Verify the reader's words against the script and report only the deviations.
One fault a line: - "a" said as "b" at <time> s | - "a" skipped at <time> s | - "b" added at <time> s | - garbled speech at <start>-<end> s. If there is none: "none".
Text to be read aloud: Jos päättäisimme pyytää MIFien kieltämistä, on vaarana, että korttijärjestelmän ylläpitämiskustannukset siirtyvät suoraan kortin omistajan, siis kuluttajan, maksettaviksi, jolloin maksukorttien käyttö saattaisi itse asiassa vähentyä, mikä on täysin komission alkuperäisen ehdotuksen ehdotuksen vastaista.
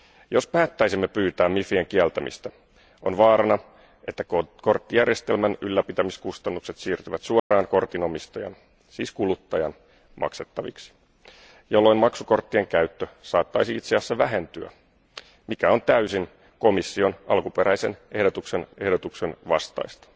none